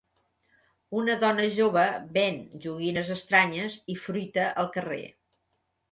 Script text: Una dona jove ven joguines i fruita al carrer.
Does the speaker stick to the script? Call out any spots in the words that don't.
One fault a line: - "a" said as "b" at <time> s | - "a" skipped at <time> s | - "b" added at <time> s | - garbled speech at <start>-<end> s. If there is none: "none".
- "estranyes" added at 3.2 s